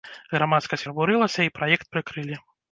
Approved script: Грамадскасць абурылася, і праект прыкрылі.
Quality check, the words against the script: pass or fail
pass